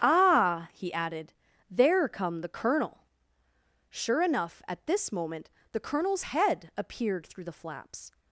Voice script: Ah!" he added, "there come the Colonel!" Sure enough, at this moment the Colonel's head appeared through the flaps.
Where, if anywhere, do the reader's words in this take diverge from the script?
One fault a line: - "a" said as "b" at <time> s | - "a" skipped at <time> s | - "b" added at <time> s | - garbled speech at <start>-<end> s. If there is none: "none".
none